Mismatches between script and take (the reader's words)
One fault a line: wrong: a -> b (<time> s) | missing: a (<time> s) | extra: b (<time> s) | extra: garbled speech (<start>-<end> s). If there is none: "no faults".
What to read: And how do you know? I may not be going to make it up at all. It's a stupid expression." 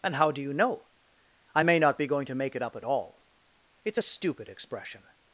no faults